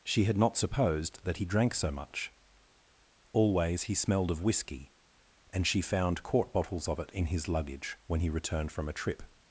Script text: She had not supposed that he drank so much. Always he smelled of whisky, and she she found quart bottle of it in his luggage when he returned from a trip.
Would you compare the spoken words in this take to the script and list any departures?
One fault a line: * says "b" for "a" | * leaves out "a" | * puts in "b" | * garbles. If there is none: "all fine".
* leaves out "she"
* says "bottles" for "bottle"